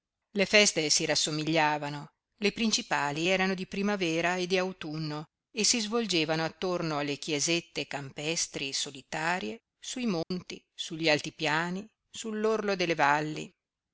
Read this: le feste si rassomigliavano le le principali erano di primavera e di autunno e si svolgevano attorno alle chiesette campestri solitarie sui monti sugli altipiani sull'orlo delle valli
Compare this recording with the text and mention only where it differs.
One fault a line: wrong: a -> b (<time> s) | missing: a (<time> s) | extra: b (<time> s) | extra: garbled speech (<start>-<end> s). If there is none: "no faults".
missing: le (2.5 s)